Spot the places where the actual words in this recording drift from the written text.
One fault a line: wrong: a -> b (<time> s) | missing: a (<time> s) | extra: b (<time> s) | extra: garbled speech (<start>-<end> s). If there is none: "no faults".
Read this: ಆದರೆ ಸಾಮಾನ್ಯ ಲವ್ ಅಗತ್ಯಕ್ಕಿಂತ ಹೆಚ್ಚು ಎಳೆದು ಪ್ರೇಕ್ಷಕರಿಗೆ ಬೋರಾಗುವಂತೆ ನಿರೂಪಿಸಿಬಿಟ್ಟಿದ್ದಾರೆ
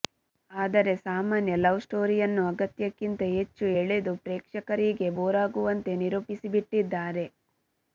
extra: ಸ್ಟೋರಿಯನ್ನು (1.9 s)